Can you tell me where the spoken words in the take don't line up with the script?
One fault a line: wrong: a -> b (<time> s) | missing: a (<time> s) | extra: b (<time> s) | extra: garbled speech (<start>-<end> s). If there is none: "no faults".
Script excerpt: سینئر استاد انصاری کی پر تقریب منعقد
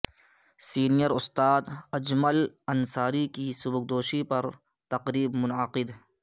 extra: اجمل (2.0 s)
extra: سبکدوشی (3.6 s)